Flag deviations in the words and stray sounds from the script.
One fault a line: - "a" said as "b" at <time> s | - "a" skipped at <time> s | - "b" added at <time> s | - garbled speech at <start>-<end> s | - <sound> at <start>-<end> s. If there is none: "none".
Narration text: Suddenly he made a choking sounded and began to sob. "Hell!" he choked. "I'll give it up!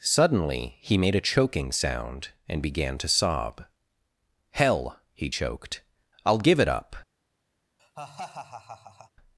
- "sounded" said as "sound" at 1.7 s
- laugh at 7.8-9.1 s